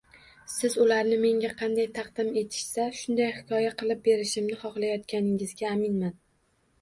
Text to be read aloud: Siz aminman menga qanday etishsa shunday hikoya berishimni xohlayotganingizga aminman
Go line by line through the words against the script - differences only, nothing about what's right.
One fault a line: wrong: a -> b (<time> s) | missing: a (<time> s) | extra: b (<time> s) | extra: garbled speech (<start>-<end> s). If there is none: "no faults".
wrong: aminman -> ularni (0.8 s)
extra: taqdim (2.0 s)
extra: qilib (3.8 s)